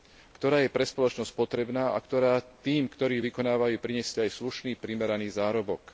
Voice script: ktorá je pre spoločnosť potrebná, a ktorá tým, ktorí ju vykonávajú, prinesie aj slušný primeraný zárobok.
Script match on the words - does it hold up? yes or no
yes